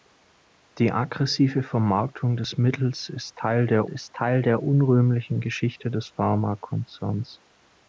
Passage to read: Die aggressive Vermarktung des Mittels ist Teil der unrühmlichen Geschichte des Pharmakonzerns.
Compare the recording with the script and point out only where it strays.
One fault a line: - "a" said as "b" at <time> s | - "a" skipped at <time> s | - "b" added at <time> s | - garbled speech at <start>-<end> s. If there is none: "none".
- "ist Teil der" added at 3.9 s